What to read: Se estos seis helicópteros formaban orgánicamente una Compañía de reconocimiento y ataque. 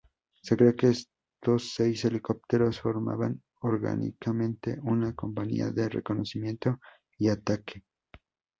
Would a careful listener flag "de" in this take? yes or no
no